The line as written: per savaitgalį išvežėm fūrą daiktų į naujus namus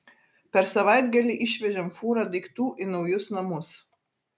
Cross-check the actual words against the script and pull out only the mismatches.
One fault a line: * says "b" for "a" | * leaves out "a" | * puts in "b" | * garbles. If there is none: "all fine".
all fine